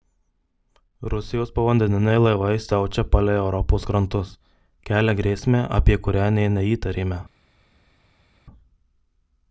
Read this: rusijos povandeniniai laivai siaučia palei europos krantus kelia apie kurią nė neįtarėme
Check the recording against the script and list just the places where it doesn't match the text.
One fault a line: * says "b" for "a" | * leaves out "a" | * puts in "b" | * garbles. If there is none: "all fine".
* puts in "grėsmę"